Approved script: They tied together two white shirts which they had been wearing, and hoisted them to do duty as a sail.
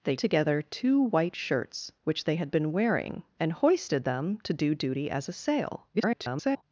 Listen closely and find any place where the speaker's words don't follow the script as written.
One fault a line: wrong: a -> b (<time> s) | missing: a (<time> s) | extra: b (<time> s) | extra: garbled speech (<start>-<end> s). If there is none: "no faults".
missing: tied (0.1 s)
extra: garbled speech (5.9-6.6 s)